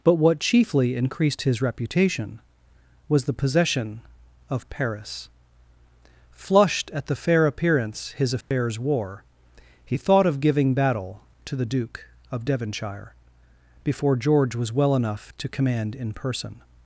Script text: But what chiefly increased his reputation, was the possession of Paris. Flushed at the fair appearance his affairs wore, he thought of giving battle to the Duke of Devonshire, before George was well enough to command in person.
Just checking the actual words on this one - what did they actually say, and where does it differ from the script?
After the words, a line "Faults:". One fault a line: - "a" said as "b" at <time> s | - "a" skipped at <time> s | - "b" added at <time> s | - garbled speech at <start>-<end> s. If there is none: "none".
But what chiefly increased his reputation, was the possession of Paris. Flushed at the fair appearance his affairs wore, he thought of giving battle to the Duke of Devonshire, before George was well enough to command in person.
Faults:
none